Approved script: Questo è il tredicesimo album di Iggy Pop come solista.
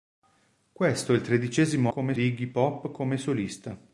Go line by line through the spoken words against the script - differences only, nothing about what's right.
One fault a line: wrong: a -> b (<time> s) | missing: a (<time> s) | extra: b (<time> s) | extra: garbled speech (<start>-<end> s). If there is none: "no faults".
wrong: album -> come (1.9 s)